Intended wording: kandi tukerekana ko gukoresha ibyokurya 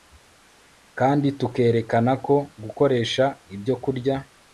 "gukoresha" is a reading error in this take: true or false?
false